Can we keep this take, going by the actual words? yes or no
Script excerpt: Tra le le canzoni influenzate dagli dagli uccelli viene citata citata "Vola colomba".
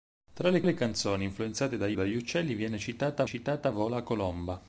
yes